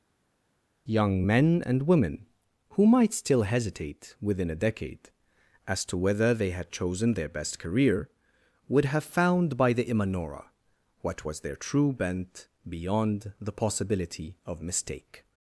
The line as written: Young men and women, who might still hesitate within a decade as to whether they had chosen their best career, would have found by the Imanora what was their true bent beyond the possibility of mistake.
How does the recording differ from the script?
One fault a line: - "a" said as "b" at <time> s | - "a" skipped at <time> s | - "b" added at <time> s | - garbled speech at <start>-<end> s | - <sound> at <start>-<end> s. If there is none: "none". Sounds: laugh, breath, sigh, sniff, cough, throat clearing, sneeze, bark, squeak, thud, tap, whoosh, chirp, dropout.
none